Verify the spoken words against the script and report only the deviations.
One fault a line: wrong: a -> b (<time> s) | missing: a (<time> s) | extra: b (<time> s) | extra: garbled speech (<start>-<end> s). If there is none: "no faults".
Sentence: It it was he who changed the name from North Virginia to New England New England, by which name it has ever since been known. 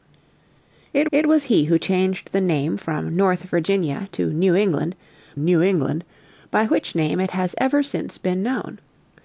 no faults